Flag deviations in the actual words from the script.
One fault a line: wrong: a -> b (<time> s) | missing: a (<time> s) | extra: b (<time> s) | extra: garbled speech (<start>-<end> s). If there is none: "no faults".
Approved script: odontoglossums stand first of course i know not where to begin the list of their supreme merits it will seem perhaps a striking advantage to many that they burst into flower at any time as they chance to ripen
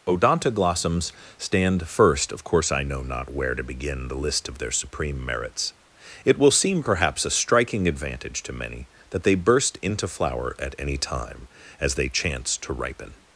no faults